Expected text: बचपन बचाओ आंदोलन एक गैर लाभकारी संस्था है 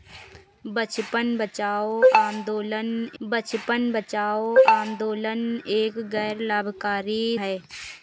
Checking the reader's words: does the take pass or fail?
fail